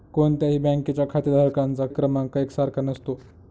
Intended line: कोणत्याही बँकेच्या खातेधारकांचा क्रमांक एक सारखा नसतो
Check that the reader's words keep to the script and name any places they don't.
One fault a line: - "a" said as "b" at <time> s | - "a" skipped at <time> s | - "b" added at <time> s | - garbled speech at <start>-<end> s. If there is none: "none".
none